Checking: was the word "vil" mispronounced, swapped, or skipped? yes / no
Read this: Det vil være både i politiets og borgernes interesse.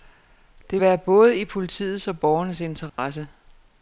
yes